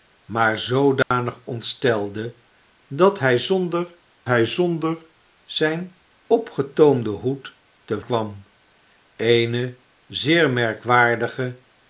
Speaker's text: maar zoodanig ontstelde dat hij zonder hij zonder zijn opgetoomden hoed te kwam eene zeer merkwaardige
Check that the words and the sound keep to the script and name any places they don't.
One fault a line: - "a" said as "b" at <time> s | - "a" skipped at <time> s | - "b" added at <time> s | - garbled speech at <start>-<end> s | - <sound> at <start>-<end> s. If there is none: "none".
- dropout at 1.0-1.1 s